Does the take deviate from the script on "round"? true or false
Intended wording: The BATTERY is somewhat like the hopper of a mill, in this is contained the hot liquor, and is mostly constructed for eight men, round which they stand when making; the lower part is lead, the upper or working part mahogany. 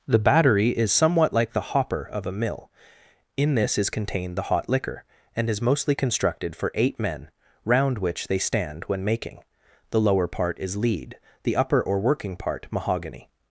false